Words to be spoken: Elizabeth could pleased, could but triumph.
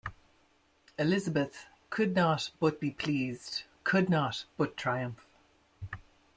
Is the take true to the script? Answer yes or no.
no